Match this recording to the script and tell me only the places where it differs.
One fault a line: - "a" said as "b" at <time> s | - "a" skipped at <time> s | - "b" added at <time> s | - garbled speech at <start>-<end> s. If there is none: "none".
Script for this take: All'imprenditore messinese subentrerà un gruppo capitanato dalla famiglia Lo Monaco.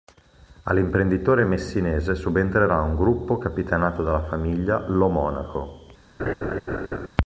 none